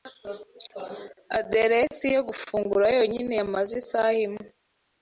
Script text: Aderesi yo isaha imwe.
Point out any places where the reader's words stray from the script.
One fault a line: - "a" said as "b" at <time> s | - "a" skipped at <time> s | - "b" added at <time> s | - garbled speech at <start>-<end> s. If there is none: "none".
- "gufungura yonyine yamaze" added at 2.3 s